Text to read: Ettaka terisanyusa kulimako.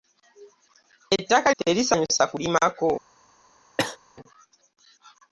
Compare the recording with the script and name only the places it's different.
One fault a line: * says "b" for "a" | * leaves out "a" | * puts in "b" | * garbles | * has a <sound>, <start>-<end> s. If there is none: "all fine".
* has a cough, 3.8-4.0 s